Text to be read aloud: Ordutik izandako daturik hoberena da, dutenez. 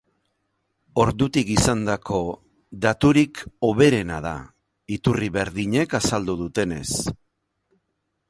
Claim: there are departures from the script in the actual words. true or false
true